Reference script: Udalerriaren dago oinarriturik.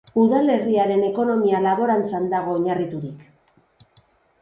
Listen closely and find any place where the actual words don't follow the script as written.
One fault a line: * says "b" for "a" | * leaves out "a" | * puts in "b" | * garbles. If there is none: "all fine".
* puts in "ekonomia laborantzan"